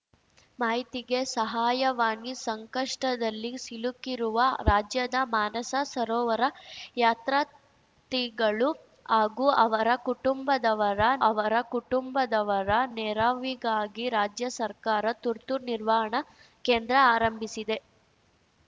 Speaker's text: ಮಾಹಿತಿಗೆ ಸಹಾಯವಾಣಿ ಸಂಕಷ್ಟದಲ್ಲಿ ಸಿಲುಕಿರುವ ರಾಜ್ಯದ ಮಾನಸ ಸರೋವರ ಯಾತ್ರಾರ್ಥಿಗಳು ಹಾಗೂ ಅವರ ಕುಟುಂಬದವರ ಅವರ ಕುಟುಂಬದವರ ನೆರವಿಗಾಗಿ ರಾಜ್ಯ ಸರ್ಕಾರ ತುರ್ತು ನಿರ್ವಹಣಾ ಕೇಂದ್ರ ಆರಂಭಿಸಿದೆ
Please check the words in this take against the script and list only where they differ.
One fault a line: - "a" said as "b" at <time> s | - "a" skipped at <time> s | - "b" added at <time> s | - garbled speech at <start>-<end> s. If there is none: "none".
none